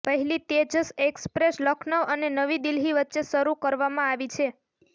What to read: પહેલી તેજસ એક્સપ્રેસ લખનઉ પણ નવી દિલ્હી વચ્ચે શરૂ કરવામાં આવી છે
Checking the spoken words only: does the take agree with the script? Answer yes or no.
no